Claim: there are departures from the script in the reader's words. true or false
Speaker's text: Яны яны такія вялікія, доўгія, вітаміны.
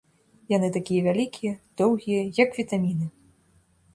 true